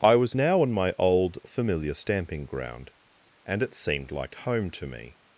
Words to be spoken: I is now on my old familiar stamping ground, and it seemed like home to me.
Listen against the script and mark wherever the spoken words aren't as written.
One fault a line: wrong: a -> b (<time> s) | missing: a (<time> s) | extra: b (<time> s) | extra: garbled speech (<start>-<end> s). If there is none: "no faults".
wrong: is -> was (0.1 s)